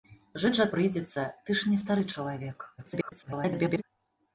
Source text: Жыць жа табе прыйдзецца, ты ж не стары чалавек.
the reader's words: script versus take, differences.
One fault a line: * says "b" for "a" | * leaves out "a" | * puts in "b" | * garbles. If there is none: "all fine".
* leaves out "табе"
* garbles